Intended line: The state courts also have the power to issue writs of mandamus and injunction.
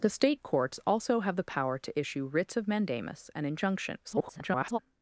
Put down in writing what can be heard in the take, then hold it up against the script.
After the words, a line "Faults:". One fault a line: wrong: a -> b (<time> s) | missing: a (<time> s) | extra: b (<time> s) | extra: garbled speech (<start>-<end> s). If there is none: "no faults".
The state courts also have the power to issue writs of mandamus and injunction. [garbled]
Faults:
extra: garbled speech (4.0-4.8 s)